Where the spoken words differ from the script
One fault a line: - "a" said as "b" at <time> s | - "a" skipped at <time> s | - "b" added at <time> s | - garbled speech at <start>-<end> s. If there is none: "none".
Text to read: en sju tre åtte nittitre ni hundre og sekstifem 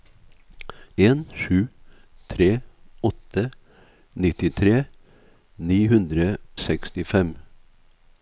- "og" skipped at 6.3 s